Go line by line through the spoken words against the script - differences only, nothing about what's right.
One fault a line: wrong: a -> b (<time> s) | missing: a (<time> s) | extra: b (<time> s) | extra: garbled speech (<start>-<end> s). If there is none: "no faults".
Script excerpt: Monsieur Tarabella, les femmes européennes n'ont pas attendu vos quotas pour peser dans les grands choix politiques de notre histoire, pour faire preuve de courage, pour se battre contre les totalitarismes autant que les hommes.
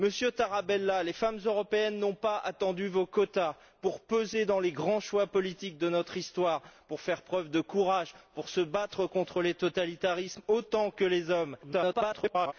extra: garbled speech (11.6-12.5 s)